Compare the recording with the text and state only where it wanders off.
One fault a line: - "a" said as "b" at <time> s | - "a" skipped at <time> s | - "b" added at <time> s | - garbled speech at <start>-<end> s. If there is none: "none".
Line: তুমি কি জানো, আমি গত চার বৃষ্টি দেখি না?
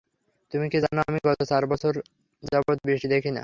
- "বছর যাবৎ" added at 1.7 s